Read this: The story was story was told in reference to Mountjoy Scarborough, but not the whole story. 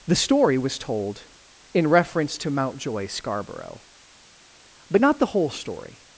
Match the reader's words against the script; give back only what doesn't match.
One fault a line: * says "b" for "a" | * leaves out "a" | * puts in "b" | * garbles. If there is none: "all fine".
* leaves out "story was"